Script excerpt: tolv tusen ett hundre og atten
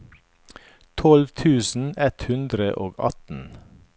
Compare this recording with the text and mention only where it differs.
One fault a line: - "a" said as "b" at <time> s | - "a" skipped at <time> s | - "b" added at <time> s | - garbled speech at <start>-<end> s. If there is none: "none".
none